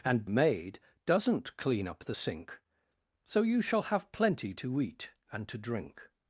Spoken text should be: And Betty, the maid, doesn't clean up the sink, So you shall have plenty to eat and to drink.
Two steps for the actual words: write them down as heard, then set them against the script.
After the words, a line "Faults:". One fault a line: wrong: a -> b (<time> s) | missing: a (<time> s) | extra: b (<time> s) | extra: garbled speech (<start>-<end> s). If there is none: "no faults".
And Maid, doesn't clean up the sink, So you shall have plenty to eat and to drink.
Faults:
missing: Betty the (0.2 s)